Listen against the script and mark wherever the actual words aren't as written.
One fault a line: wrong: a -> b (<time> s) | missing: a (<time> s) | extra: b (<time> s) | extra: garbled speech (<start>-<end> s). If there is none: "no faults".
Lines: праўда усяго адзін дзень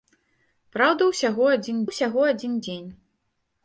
extra: усяго адзін (1.9 s)